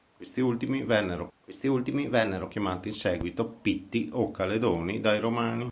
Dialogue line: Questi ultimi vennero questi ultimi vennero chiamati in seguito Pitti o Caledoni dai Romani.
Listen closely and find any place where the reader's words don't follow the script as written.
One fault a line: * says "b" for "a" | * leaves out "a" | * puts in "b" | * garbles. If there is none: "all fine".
all fine